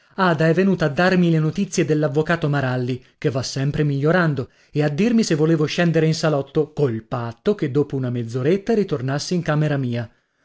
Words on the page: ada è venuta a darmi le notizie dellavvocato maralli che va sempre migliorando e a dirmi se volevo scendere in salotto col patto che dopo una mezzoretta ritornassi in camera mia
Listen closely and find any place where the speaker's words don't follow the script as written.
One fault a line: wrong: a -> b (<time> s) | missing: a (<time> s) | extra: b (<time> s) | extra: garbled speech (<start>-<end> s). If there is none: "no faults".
no faults